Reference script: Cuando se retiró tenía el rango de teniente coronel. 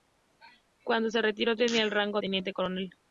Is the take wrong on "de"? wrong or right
wrong